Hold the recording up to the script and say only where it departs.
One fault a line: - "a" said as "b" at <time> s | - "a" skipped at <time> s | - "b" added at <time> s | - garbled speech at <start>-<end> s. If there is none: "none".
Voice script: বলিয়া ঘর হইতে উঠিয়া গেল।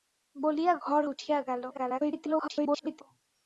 - "হইতে" skipped at 1.0 s
- garbled speech at 1.7-3.0 s